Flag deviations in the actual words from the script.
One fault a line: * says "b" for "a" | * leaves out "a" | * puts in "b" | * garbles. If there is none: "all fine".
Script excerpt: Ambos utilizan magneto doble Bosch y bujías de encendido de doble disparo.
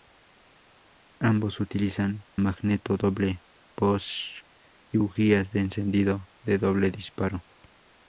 all fine